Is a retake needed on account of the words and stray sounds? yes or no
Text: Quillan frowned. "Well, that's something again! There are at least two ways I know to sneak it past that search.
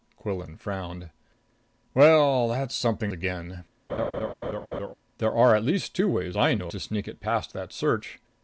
yes